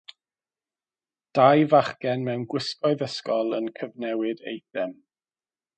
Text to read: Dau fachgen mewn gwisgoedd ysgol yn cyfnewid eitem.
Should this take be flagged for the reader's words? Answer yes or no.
no